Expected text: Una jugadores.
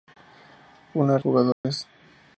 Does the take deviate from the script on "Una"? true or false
false